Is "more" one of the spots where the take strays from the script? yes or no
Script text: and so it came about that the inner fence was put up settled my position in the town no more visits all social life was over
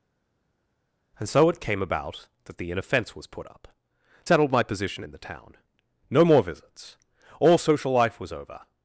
no